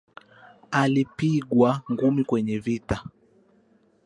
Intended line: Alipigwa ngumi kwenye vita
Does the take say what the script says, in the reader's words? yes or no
yes